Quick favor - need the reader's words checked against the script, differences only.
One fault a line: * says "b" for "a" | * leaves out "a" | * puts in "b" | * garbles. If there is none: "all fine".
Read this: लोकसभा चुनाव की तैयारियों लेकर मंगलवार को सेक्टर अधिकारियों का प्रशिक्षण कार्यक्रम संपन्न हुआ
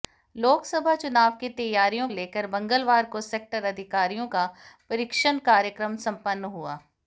all fine